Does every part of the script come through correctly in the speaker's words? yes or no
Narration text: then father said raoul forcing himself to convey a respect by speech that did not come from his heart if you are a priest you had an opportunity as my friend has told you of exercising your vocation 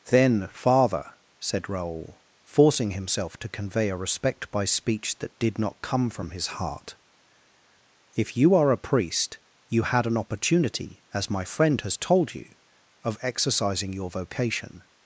yes